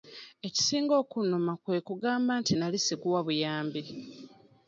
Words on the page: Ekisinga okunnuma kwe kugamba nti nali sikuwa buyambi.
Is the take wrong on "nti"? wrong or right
right